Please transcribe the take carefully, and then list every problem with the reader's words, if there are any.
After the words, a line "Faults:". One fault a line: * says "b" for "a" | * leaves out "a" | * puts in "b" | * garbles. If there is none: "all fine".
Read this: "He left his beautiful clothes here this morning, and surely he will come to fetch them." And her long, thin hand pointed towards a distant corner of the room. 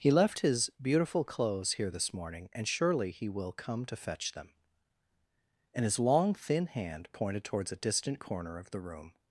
"He left his beautiful clothes here this morning, and surely he will come to fetch them." And his long, thin hand pointed towards a distant corner of the room.
Faults:
* says "his" for "her"